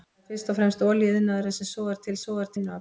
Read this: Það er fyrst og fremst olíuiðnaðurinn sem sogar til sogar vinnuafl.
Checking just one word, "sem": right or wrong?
right